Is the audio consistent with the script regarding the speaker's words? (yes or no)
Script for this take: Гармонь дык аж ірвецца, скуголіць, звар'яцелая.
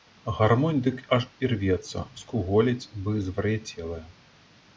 no